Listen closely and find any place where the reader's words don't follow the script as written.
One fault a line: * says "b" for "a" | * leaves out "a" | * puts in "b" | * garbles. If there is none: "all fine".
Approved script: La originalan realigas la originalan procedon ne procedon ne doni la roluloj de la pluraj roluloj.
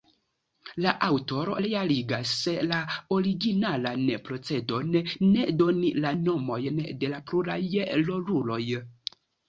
* says "aŭtoro" for "originalan"
* leaves out "procedon ne"
* says "nomojn" for "roluloj"